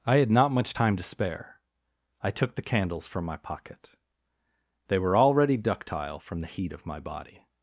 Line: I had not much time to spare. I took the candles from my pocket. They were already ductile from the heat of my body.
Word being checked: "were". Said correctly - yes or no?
yes